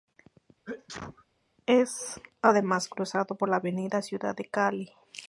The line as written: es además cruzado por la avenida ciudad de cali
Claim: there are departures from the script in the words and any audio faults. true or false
true